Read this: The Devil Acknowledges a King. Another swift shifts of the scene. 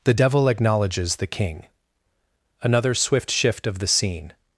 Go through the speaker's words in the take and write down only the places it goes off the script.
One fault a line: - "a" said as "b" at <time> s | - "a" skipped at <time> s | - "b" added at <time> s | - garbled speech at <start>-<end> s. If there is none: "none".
- "a" said as "the" at 1.2 s
- "shifts" said as "shift" at 3.3 s